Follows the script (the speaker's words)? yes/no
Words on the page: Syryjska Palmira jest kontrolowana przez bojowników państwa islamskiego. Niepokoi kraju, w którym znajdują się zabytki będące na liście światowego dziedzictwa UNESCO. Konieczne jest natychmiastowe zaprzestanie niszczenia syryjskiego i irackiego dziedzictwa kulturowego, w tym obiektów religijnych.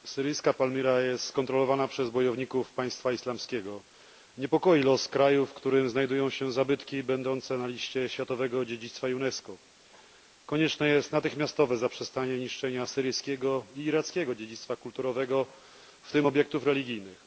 no